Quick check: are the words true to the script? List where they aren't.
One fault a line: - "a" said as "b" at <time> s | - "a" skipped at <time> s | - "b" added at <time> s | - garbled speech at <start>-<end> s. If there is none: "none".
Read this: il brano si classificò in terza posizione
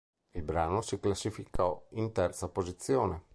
none